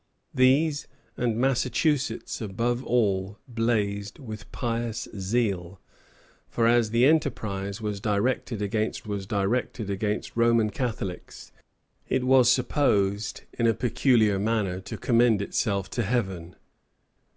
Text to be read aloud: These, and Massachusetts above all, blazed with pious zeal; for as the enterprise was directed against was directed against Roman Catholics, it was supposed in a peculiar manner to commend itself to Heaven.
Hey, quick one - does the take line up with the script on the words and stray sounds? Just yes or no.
yes